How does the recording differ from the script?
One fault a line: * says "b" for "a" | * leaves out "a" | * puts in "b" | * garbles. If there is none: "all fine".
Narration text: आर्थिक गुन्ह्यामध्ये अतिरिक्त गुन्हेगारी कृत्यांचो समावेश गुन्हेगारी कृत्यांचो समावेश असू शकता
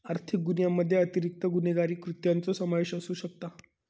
* leaves out "गुन्हेगारी कृत्यांचो समावेश"